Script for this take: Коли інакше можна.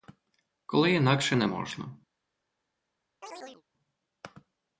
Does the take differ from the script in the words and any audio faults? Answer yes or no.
yes